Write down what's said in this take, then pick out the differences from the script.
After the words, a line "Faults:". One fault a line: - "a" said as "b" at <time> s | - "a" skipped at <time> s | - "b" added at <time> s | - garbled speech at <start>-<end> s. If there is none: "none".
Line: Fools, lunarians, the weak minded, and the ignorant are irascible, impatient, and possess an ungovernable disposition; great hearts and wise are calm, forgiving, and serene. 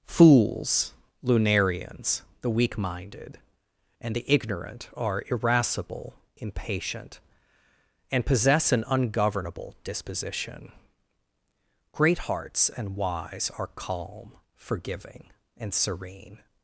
Fools, lunarians, the weak minded, and the ignorant are irascible, impatient, and possess an ungovernable disposition; great hearts and wise are calm, forgiving, and serene.
Faults:
none